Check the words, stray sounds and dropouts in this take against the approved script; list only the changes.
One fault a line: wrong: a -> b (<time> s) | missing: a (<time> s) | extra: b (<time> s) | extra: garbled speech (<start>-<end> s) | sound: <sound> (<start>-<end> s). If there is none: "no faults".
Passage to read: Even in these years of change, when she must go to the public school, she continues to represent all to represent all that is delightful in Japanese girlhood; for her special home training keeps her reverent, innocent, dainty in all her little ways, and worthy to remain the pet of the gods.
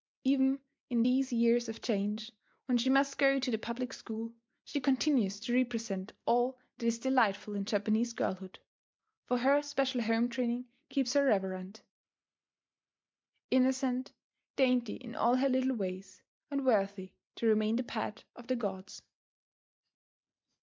missing: to represent all (6.6 s)